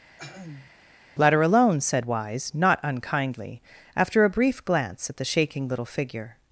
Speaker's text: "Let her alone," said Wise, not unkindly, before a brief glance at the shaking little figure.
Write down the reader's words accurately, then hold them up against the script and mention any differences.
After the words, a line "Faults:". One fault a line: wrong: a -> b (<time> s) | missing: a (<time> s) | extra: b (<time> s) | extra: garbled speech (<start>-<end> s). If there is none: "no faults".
"Let her alone," said Wise, not unkindly, after a brief glance at the shaking little figure.
Faults:
wrong: before -> after (4.0 s)